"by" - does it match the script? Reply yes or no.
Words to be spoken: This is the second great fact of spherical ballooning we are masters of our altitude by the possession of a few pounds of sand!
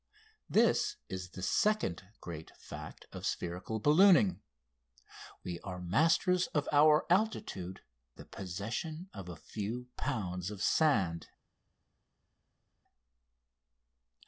no